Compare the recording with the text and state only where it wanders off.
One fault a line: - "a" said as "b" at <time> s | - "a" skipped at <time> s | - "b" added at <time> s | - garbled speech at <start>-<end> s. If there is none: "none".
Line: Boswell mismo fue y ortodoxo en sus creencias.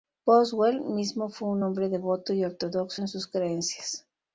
- "un hombre devoto" added at 1.5 s